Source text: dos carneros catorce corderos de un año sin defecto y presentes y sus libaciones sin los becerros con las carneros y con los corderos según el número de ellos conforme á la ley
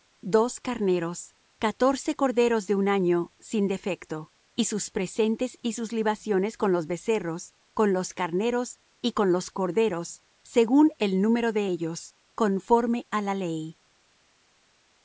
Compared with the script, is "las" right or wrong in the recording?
wrong